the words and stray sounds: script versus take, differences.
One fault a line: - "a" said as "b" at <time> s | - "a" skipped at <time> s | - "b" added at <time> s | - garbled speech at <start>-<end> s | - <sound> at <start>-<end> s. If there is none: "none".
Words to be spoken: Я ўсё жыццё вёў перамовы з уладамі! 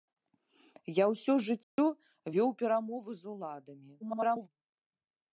- dropout at 1.6-1.8 s
- garbled speech at 4.0-4.5 s